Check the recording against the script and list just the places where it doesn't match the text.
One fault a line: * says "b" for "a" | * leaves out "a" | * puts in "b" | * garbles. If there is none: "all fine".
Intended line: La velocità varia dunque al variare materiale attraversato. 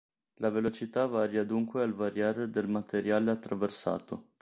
* puts in "del"